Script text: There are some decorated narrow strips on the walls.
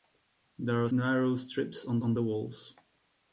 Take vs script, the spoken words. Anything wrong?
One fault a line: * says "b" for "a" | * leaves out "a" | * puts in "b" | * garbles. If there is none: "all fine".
* leaves out "some decorated"
* puts in "on"